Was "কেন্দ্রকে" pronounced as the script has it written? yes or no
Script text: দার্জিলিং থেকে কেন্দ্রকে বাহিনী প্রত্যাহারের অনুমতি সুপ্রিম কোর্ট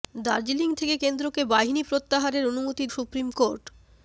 yes